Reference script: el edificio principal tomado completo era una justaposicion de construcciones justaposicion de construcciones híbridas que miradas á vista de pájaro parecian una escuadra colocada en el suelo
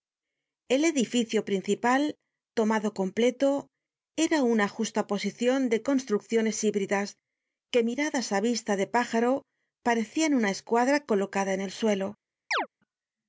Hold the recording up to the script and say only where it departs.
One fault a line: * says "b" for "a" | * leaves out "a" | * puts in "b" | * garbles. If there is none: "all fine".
* leaves out "justaposicion de construcciones"